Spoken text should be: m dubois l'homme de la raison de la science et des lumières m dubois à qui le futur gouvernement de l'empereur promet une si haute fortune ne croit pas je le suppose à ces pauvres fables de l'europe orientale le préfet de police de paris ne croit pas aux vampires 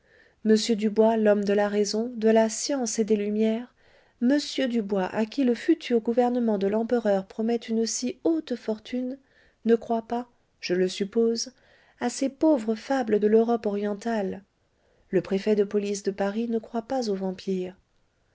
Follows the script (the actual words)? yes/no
yes